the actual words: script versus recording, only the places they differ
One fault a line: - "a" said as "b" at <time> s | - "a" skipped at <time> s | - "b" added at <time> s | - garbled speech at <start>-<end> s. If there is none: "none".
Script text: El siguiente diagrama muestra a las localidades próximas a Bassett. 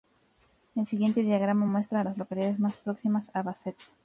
- "más" added at 2.6 s